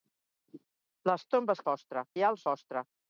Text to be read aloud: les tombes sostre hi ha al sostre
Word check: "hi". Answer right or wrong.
right